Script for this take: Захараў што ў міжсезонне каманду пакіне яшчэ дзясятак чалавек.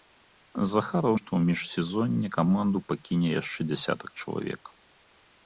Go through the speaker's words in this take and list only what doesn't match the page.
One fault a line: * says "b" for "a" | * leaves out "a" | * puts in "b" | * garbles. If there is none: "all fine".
all fine